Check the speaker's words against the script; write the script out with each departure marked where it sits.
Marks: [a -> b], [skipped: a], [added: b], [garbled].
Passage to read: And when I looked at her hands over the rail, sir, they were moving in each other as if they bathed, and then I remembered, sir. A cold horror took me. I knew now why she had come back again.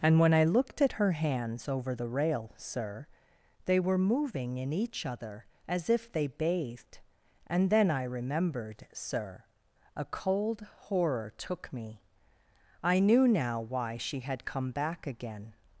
And when I looked at her hands over the rail, sir, they were moving in each other as if they bathed, and then I remembered, sir. A cold horror took me. I knew now why she had come back again.